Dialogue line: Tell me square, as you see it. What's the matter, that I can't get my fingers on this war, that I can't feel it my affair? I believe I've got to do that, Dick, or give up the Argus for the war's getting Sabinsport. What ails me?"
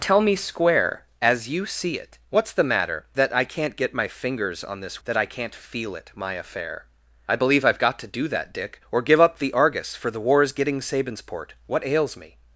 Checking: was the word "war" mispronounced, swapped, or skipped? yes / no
yes